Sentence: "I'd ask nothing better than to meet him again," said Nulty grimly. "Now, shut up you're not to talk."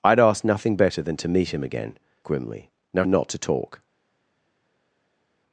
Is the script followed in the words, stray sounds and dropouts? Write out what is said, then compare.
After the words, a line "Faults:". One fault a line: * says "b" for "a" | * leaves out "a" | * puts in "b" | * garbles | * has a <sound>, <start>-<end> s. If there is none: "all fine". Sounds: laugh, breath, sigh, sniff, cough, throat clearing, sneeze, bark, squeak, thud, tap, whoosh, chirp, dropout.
"I'd ask nothing better than to meet him again," grimly. "Now, not to talk."
Faults:
* leaves out "said Nulty"
* leaves out "shut up you're"